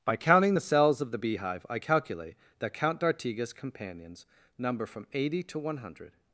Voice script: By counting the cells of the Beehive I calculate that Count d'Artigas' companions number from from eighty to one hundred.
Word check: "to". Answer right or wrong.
right